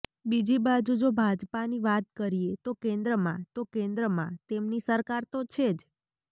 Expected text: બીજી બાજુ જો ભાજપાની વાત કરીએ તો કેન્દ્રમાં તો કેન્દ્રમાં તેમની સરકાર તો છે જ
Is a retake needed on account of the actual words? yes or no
no